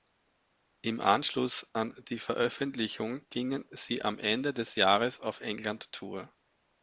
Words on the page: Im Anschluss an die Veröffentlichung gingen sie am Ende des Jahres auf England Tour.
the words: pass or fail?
pass